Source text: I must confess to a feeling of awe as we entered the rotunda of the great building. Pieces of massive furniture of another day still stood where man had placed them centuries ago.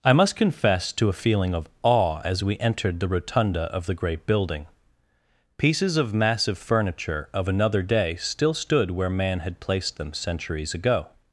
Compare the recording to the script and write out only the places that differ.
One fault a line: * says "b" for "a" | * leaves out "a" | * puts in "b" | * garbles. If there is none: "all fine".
all fine